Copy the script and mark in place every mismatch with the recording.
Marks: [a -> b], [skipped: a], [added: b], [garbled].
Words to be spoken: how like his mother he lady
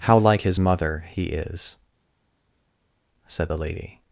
how like his mother he [added: is said the] lady